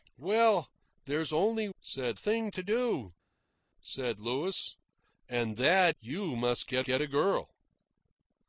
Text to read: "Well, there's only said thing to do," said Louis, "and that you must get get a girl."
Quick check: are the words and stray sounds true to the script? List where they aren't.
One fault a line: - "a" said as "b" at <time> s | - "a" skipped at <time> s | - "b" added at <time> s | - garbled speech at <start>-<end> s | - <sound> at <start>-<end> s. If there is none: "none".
none